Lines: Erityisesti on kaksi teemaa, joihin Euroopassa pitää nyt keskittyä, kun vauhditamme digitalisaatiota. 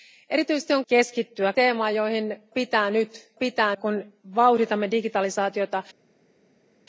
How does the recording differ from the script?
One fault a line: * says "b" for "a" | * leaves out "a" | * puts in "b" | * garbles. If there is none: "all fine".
* says "keskittyä" for "kaksi"
* leaves out "Euroopassa"
* says "pitää" for "keskittyä"